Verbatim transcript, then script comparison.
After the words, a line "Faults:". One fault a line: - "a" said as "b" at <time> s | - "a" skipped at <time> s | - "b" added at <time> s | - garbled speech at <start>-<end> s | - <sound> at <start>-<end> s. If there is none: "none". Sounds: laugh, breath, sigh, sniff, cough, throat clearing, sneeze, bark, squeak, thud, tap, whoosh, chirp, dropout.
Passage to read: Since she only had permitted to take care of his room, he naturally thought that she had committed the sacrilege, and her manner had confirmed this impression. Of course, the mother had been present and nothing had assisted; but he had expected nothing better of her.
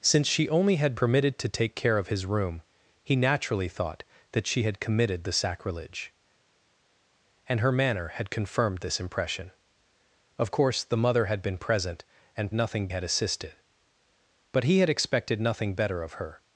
Since she only had permitted to take care of his room, he naturally thought that she had committed the sacrilege, and her manner had confirmed this impression. Of course, the mother had been present and nothing had assisted; but he had expected nothing better of her.
Faults:
none